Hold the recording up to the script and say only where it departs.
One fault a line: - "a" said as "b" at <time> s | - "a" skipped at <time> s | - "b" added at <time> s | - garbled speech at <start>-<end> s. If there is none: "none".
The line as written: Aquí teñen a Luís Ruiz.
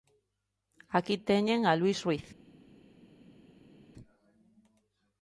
none